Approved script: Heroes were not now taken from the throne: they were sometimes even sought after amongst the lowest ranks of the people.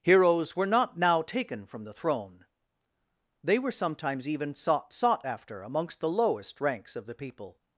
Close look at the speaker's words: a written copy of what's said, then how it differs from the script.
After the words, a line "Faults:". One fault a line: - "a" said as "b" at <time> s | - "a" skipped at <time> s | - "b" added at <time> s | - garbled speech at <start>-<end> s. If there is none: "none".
Heroes were not now taken from the throne: they were sometimes even sought sought after amongst the lowest ranks of the people.
Faults:
- "sought" added at 4.9 s